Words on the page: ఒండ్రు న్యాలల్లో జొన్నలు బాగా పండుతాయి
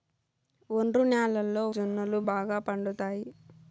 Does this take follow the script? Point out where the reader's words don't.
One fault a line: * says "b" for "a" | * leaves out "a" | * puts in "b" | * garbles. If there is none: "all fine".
all fine